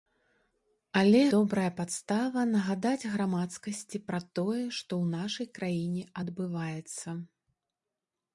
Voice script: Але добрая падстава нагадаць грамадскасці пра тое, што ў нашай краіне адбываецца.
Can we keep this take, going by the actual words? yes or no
yes